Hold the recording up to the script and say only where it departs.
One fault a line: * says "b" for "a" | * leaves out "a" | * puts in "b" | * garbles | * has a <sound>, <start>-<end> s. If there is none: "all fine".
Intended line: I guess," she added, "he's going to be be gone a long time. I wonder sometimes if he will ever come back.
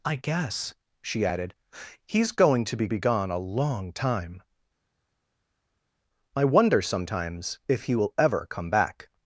all fine